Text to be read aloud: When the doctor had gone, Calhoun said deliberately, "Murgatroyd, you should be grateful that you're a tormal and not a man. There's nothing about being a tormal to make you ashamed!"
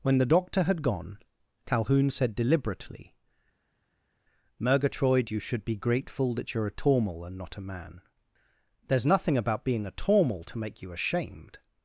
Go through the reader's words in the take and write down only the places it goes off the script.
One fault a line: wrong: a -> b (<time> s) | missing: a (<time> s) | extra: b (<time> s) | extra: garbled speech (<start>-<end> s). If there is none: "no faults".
no faults